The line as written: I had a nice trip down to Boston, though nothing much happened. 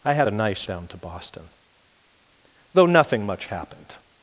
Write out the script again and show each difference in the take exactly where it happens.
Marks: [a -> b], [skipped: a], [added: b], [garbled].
I had a nice [skipped: trip] down to Boston, though nothing much happened.